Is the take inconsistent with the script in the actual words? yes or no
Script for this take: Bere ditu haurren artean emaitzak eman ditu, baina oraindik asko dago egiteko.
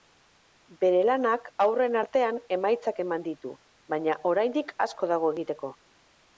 yes